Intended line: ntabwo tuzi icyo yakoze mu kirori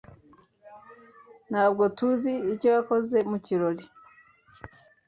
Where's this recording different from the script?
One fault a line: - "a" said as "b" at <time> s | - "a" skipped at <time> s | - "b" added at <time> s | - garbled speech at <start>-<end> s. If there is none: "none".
none